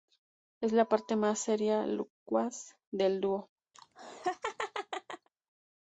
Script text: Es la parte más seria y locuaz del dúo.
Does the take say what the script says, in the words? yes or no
yes